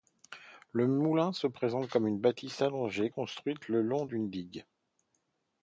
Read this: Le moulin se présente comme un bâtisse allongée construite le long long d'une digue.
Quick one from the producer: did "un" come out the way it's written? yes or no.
no